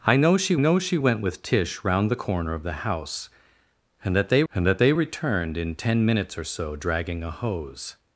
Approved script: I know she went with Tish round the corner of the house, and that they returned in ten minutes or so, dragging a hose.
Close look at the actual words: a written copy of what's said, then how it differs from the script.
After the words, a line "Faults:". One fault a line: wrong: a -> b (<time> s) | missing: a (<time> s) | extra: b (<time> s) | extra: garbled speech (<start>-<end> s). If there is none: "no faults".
I know she know she went with Tish round the corner of the house, and that they and that they returned in ten minutes or so, dragging a hose.
Faults:
extra: know she (0.6 s)
extra: and that they (4.5 s)